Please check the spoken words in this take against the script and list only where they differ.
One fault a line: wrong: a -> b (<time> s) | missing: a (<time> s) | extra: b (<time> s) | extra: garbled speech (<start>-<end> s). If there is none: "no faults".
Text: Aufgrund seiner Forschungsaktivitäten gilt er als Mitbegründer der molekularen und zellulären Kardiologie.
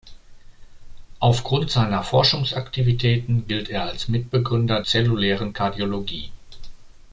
missing: der molekularen und (4.8 s)